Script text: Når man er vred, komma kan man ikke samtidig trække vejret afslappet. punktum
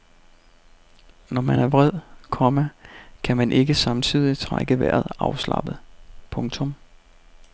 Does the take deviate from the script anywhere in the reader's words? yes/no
no